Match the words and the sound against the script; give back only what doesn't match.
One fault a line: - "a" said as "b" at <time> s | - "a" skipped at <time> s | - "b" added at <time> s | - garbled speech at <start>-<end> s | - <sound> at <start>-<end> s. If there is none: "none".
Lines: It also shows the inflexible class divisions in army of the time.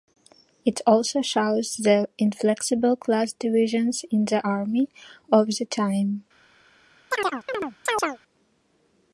- "the" added at 4.2 s
- chirp at 7.1-8.2 s